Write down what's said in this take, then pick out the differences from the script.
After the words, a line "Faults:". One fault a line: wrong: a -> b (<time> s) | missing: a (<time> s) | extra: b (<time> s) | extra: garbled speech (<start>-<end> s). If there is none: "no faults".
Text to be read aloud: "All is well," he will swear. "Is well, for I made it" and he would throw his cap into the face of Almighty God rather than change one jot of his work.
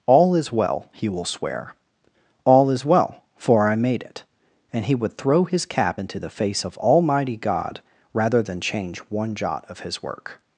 "All is well," he will swear. "All is well, for I made it" and he would throw his cap into the face of Almighty God rather than change one jot of his work.
Faults:
extra: All (2.4 s)